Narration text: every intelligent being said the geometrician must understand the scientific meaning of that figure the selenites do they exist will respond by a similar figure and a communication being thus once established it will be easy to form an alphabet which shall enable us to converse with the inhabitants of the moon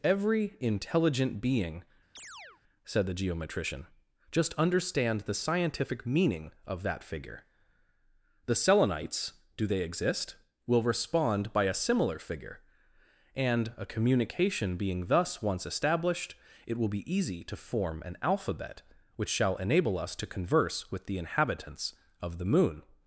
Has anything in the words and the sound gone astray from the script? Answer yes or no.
yes